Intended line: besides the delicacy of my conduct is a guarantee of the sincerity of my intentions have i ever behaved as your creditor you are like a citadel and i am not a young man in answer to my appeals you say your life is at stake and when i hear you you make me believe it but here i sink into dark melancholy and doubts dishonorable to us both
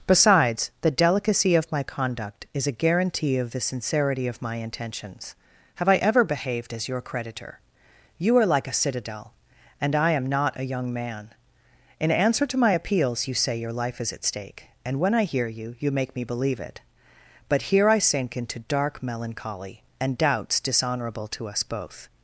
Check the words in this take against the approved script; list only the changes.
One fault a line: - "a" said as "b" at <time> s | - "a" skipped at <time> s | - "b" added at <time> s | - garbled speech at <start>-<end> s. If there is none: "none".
none